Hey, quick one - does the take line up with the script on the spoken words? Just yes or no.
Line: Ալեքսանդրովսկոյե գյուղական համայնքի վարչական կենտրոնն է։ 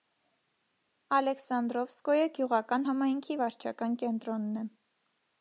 yes